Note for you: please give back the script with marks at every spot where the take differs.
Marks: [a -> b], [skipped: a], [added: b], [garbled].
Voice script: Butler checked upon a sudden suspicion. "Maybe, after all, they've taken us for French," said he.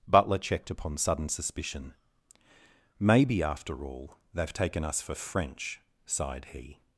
Butler checked upon [skipped: a] sudden suspicion. "Maybe, after all, they've taken us for French," [said -> sighed] he.